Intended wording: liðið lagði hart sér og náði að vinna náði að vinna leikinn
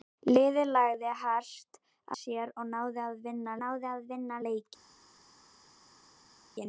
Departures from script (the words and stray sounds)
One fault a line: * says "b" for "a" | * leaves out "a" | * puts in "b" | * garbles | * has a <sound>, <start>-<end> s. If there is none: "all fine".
all fine